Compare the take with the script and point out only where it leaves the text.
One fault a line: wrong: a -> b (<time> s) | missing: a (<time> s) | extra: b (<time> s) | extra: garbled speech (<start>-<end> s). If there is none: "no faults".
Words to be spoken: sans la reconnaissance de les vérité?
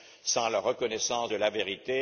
wrong: les -> la (1.4 s)